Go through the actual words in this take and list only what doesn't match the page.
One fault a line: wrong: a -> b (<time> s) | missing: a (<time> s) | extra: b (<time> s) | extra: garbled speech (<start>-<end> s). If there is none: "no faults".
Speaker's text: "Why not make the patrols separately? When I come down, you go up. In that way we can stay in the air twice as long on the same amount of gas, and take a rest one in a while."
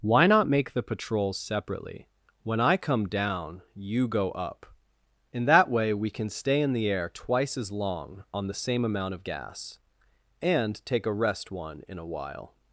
no faults